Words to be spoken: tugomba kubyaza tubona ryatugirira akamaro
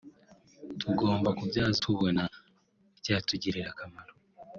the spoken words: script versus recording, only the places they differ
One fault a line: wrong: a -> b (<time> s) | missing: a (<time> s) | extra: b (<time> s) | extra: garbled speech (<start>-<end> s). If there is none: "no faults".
no faults